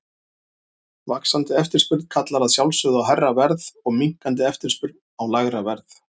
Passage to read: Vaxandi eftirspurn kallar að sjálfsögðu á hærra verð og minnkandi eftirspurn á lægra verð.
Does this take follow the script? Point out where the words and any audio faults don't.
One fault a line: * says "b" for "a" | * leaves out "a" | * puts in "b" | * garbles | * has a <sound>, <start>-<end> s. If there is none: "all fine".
all fine